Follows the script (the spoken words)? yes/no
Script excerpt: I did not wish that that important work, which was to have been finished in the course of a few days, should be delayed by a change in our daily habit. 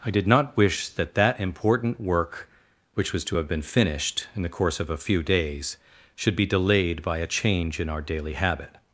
yes